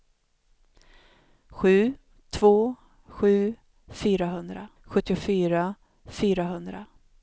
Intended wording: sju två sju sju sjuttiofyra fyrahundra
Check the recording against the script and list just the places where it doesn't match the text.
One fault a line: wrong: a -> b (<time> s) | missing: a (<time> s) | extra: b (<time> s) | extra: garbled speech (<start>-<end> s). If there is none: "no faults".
wrong: sju -> fyrahundra (3.9 s)